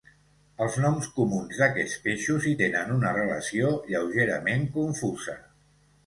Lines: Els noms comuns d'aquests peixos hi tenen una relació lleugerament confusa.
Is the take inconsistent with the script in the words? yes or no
no